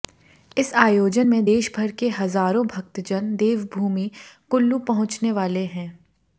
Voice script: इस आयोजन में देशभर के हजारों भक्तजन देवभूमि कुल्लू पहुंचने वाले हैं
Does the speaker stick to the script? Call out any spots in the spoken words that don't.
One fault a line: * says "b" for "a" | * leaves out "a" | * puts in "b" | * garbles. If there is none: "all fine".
all fine